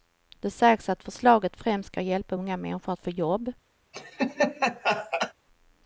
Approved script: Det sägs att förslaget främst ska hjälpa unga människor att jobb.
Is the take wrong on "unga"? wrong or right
right